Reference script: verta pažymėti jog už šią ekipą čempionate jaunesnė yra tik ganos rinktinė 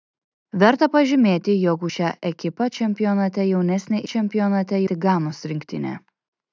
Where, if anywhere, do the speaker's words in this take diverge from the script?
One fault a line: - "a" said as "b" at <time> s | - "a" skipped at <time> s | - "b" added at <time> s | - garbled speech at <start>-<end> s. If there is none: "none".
- "yra" said as "čempionate" at 4.1 s